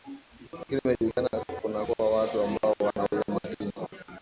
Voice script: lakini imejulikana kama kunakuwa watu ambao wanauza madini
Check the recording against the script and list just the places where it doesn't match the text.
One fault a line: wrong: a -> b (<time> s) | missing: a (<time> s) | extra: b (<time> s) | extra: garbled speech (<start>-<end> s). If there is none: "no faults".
missing: kama (1.3 s)